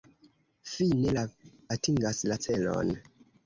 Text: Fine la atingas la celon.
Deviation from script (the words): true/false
false